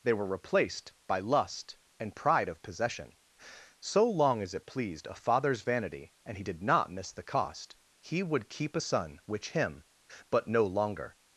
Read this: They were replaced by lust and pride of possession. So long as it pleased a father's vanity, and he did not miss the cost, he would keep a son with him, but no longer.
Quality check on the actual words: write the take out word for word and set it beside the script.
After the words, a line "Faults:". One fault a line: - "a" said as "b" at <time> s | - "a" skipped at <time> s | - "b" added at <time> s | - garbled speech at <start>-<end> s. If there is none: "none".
They were replaced by lust and pride of possession. So long as it pleased a father's vanity, and he did not miss the cost, he would keep a son which him, but no longer.
Faults:
- "with" said as "which" at 9.3 s